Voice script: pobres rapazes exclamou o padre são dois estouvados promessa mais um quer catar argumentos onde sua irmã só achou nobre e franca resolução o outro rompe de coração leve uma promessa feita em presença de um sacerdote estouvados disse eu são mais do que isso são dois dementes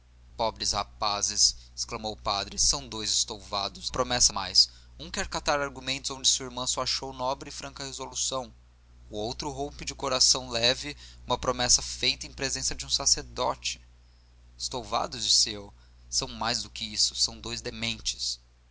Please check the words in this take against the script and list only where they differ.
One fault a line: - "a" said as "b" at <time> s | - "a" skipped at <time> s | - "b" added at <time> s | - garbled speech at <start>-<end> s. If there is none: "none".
none